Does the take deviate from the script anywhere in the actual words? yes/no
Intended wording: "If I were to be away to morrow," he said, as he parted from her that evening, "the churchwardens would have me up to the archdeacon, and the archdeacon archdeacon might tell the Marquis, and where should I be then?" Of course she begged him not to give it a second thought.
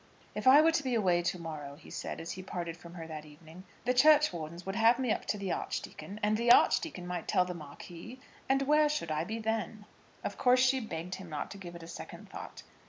yes